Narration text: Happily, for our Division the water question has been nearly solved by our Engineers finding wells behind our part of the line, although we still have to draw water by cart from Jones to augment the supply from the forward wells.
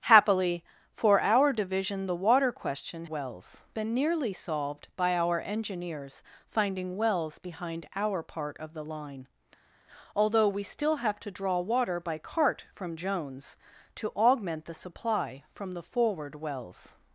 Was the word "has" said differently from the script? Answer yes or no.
yes